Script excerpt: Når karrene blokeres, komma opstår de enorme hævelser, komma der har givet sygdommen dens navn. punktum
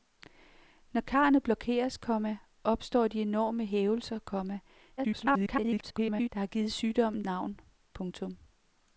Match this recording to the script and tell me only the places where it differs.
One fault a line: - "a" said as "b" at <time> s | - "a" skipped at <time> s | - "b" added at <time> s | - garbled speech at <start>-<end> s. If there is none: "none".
- garbled speech at 5.0-6.3 s
- "dens" skipped at 7.2 s